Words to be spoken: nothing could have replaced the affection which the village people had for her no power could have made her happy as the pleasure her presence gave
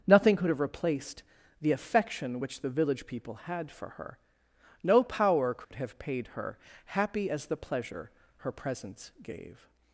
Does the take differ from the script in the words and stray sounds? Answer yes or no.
yes